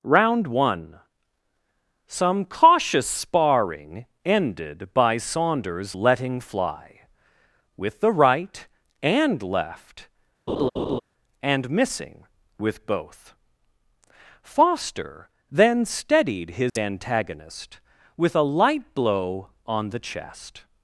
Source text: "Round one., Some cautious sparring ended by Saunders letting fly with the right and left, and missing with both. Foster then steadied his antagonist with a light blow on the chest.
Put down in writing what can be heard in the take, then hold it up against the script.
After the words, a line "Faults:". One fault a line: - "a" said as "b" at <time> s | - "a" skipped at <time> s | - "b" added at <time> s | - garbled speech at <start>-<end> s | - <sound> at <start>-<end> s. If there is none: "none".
"Round one., Some cautious sparring ended by Saunders letting fly with the right and left, and missing with both. Foster then steadied his antagonist with a light blow on the chest.
Faults:
- laugh at 10.5-11.0 s
- dropout at 16.7-16.8 s